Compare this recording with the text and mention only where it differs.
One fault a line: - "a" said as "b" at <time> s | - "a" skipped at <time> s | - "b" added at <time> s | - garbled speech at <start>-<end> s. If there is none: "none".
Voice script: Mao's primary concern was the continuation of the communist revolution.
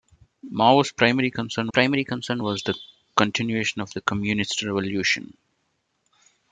- "primary concern" added at 1.7 s